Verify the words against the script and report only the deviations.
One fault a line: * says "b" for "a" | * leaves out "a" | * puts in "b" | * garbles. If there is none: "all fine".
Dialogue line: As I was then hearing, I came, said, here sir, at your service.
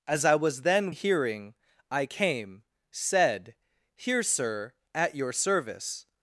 all fine